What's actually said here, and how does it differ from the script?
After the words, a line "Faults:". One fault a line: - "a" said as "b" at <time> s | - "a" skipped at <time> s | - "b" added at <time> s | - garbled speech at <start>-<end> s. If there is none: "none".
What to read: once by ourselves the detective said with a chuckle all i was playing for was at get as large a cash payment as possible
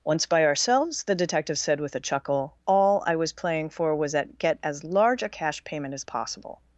once by ourselves the detective said with a chuckle all i was playing for was at get as large a cash payment as possible
Faults:
none